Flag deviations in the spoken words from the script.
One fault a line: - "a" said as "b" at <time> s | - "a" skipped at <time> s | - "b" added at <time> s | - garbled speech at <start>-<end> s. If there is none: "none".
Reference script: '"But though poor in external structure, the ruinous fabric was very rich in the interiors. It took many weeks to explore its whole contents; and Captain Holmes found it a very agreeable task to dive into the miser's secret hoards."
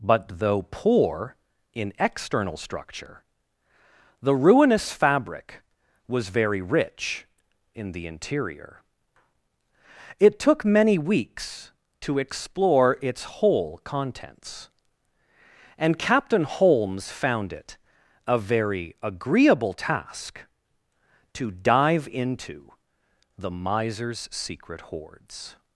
- "interiors" said as "interior" at 8.1 s